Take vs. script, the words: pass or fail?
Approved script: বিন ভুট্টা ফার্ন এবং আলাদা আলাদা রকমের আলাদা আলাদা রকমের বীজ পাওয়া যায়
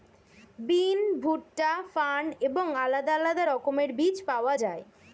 fail